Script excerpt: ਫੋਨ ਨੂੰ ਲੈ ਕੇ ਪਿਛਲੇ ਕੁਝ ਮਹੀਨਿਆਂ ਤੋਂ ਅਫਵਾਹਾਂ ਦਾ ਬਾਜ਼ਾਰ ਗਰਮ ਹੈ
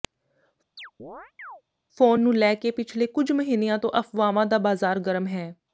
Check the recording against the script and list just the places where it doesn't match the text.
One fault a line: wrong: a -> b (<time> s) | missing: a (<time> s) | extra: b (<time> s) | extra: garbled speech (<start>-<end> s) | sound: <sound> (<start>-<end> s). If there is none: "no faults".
sound: chirp (0.8-1.6 s)